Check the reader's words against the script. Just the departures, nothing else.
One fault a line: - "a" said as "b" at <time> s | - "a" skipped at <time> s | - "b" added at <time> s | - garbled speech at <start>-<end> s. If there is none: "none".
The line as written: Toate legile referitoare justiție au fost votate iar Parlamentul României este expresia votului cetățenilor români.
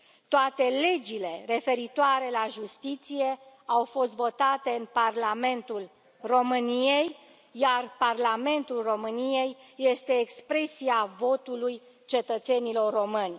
- "la" added at 2.3 s
- "în Parlamentul României" added at 4.7 s